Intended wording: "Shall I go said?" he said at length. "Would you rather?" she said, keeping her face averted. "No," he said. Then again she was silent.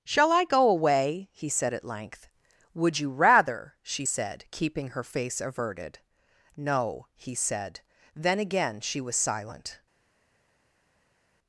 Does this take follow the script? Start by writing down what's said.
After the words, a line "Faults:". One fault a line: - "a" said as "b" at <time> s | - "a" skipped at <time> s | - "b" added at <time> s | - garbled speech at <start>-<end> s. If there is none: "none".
"Shall I go away?" he said at length. "Would you rather?" she said, keeping her face averted. "No," he said. Then again she was silent.
Faults:
- "said" said as "away" at 0.7 s